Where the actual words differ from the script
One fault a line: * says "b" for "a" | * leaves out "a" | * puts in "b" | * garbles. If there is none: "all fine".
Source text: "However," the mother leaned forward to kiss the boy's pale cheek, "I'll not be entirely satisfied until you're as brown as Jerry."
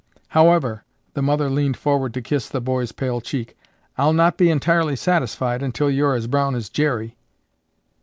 all fine